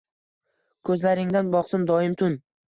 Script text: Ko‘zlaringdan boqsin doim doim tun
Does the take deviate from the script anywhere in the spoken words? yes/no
yes